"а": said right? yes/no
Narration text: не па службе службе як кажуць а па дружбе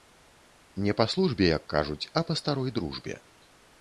yes